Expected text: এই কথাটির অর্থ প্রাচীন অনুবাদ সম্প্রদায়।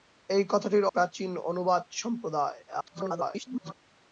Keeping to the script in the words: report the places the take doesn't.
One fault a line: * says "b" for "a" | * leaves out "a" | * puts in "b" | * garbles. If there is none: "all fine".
* leaves out "অর্থ"
* garbles